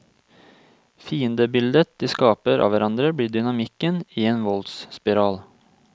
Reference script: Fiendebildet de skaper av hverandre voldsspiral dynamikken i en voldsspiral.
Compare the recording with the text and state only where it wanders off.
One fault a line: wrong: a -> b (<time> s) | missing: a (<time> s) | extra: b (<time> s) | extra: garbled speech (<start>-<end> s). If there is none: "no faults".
wrong: voldsspiral -> blir (3.1 s)